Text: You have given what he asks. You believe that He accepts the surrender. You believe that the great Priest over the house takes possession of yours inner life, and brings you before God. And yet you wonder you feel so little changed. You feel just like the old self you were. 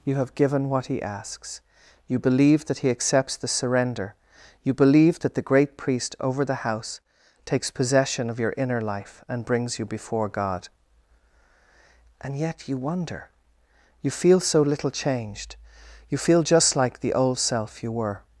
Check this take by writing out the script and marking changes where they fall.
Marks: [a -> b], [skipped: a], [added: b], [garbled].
You have given what he asks. You believe that He accepts the surrender. You believe that the great Priest over the house takes possession of [yours -> your] inner life, and brings you before God. And yet you wonder you feel so little changed. You feel just like the old self you were.